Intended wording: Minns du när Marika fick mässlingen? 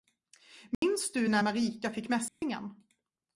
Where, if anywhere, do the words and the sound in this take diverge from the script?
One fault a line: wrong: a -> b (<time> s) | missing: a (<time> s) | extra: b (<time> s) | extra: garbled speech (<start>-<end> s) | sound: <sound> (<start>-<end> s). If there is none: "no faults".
sound: dropout (0.7-0.8 s)
sound: dropout (2.3-2.4 s)